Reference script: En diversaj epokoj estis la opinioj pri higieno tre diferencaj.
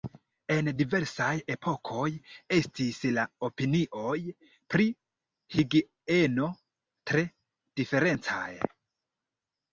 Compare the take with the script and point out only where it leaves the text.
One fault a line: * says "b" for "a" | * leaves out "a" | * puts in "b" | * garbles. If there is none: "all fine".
all fine